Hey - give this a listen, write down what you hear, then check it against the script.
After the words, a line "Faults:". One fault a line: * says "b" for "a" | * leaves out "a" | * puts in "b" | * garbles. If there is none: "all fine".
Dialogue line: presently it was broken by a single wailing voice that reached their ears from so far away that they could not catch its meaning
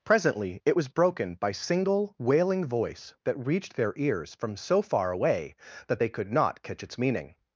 presently it was broken by single wailing voice that reached their ears from so far away that they could not catch its meaning
Faults:
* leaves out "a"